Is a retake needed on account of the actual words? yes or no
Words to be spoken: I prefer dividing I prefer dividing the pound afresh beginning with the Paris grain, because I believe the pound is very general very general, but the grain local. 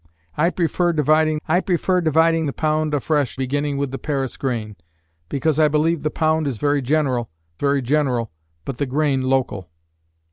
no